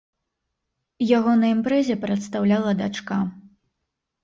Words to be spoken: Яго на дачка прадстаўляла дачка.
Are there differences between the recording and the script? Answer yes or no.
yes